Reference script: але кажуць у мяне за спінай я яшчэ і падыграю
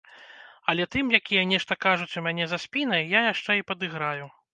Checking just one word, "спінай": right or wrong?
right